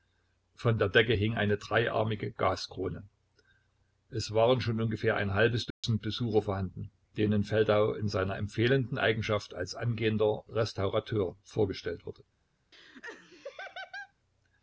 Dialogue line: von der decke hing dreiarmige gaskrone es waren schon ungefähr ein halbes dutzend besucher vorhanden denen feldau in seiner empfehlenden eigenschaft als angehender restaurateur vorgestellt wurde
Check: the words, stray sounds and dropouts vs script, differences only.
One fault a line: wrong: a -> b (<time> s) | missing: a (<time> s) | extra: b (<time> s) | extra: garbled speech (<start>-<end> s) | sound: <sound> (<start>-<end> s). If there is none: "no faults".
extra: eine (1.4 s)
sound: dropout (5.7-5.8 s)
sound: laugh (12.7-14.1 s)